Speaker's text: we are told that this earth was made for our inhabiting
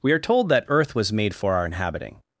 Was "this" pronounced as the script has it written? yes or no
no